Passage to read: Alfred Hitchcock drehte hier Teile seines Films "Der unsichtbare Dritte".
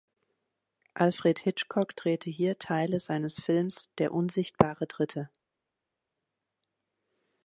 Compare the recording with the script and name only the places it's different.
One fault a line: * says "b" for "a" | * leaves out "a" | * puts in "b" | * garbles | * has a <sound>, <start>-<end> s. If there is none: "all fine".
all fine